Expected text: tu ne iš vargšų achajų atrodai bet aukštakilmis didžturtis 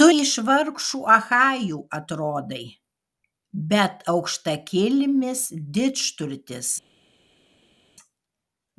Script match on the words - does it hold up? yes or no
no